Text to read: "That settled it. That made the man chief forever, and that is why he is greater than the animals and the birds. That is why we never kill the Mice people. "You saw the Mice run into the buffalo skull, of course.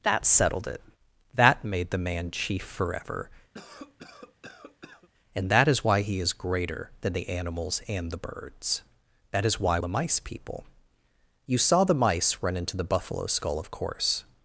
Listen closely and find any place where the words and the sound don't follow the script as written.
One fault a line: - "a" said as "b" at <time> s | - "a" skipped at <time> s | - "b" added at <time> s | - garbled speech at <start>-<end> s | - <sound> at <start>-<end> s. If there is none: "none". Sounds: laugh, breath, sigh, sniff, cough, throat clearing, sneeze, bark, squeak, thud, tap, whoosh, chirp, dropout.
- cough at 3.5-5.1 s
- "we never kill" skipped at 9.8 s